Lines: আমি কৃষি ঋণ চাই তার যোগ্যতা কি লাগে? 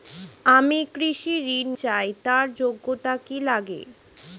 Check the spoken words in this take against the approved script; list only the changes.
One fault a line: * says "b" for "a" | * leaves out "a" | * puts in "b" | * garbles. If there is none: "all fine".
all fine